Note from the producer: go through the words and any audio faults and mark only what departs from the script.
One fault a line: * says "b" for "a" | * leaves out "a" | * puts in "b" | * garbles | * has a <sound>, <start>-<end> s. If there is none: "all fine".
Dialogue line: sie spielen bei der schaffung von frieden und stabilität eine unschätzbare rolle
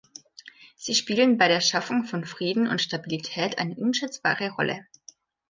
all fine